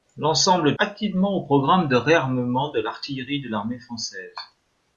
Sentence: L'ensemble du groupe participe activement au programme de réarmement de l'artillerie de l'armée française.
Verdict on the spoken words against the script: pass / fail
fail